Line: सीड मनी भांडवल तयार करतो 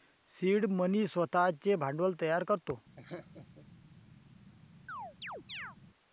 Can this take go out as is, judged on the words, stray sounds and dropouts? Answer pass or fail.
fail